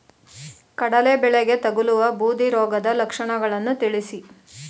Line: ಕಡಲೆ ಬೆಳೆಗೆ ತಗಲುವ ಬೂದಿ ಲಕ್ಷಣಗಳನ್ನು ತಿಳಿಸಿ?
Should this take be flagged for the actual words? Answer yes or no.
yes